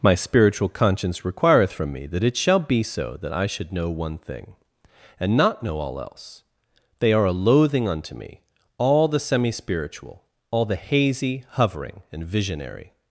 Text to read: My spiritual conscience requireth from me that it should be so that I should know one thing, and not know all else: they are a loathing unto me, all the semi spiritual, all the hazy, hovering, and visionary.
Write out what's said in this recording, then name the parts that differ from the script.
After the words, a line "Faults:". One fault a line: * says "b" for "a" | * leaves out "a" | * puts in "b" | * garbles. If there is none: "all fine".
My spiritual conscience requireth from me that it shall be so that I should know one thing, and not know all else: they are a loathing unto me, all the semi spiritual, all the hazy, hovering, and visionary.
Faults:
* says "shall" for "should"